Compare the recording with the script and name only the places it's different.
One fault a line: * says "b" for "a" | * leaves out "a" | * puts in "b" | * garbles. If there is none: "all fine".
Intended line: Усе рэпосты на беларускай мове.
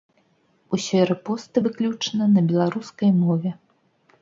* puts in "выключна"